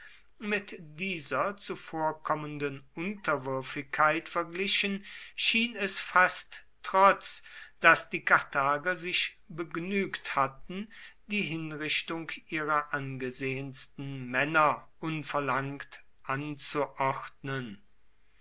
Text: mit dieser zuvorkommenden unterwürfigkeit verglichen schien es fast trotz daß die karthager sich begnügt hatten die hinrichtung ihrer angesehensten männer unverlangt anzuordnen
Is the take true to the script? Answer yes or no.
yes